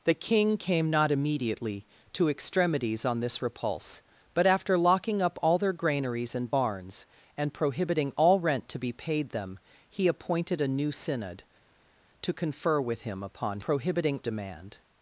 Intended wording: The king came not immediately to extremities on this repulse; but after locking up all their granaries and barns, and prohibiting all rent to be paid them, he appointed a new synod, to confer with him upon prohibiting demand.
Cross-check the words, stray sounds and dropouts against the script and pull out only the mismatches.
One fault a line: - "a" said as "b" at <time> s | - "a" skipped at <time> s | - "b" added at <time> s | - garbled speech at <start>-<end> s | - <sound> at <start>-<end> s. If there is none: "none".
none